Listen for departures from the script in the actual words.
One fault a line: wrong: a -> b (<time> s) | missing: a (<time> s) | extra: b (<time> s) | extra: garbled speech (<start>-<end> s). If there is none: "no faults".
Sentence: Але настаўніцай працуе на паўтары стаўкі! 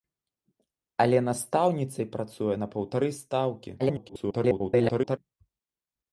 extra: garbled speech (3.8-5.2 s)